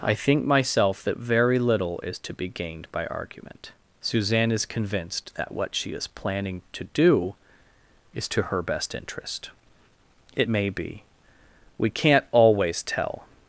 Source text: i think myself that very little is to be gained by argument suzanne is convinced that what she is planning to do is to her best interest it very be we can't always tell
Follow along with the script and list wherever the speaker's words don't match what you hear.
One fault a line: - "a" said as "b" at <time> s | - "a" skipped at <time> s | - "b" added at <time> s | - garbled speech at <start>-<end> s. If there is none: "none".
- "very" said as "may" at 10.5 s